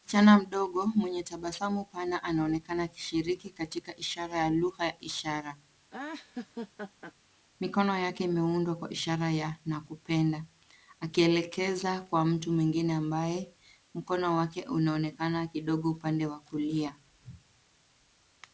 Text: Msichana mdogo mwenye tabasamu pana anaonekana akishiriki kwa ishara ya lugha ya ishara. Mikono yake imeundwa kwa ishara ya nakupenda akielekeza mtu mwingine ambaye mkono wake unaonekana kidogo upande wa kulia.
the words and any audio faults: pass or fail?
fail